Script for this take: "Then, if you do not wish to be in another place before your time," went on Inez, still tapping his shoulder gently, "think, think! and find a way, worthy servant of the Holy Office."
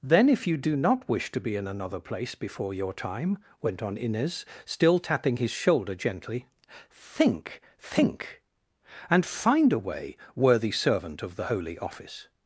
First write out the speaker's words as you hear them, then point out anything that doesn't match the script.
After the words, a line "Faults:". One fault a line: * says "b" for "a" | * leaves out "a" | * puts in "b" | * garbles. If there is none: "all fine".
"Then, if you do not wish to be in another place before your time," went on Inez, still tapping his shoulder gently, "think, think! and find a way, worthy servant of the Holy Office."
Faults:
all fine